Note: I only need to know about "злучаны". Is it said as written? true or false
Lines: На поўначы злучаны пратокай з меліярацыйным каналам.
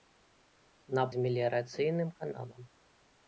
false